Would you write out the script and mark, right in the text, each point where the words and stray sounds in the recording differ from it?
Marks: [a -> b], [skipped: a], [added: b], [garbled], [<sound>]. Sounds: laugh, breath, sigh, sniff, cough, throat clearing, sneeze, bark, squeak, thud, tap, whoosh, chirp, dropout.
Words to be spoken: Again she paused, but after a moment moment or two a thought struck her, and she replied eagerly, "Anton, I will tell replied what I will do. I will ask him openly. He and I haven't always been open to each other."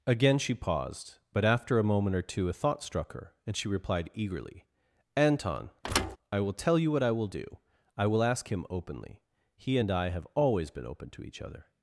Again she paused, but after a moment [skipped: moment] or two a thought struck her, and she replied eagerly, "Anton, [thud] I will tell [replied -> you] what I will do. I will ask him openly. He and I [haven't -> have] always been open to each other."